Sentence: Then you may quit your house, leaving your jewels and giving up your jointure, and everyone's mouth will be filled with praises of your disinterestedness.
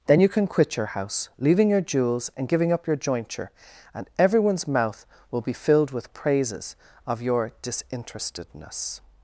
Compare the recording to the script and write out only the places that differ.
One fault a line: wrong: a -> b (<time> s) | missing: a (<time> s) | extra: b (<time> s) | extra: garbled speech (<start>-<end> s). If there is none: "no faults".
wrong: may -> can (0.3 s)